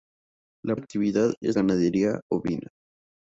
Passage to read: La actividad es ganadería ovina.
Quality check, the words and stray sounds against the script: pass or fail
pass